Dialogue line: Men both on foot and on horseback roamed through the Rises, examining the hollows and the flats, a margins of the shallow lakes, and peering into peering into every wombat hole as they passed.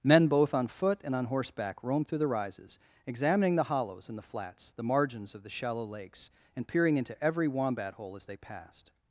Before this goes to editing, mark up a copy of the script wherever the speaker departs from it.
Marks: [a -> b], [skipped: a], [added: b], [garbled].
Men both on foot and on horseback roamed through the Rises, examining the hollows and the flats, [a -> the] margins of the shallow lakes, and peering into [skipped: peering into] every wombat hole as they passed.